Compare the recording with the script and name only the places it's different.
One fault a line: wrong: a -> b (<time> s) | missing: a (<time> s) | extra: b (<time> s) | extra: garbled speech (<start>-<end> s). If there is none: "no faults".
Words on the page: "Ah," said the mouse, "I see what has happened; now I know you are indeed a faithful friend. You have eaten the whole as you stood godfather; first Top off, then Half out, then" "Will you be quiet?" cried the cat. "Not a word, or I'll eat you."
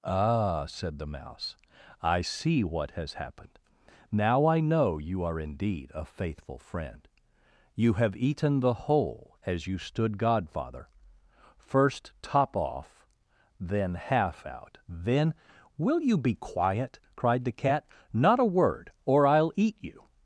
no faults